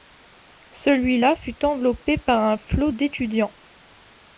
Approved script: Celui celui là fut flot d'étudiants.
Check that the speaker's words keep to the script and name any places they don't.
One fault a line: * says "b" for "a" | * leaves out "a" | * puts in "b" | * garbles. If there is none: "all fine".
* leaves out "celui"
* puts in "enveloppé par un"